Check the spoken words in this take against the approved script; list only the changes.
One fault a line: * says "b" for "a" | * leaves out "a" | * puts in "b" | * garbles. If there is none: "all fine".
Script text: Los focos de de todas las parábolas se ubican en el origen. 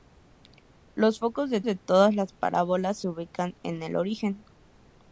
all fine